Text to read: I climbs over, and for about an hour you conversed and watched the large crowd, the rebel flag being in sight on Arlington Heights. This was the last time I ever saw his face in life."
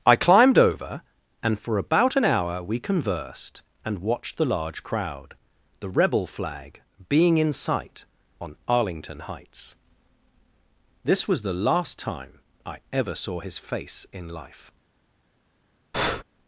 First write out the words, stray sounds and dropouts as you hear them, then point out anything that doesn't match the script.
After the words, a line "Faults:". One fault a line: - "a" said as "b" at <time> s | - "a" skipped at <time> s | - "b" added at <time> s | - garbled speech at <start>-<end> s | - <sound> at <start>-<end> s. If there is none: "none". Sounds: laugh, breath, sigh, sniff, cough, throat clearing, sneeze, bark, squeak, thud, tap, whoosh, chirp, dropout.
I climbed over, and for about an hour we conversed and watched the large crowd, the rebel flag being in sight on Arlington Heights. This was the last time I ever saw his face in life."
Faults:
- "climbs" said as "climbed" at 0.1 s
- "you" said as "we" at 2.6 s
- breath at 15.9-16.2 s